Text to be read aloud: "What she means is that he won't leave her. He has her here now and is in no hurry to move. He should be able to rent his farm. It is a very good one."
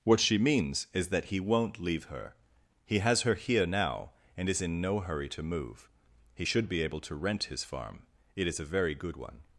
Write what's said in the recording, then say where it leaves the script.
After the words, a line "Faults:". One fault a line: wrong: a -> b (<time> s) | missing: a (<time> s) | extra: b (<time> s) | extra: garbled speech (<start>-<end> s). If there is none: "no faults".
"What she means is that he won't leave her. He has her here now and is in no hurry to move. He should be able to rent his farm. It is a very good one."
Faults:
no faults